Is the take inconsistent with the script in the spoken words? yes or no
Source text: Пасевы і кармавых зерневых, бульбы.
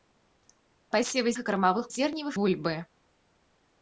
no